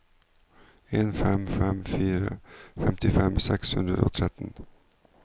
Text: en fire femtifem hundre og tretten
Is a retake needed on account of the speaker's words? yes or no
yes